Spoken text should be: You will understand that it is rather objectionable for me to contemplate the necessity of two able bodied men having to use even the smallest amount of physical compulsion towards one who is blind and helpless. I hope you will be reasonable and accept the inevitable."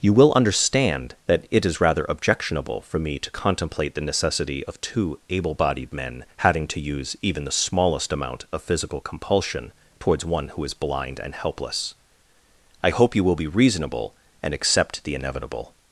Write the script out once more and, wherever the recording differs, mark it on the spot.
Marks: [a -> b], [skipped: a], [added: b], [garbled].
You will understand that it is rather objectionable for me to contemplate the necessity of two able bodied men having to use even the smallest amount of physical compulsion towards one who is blind and helpless. I hope you will be reasonable and accept the inevitable."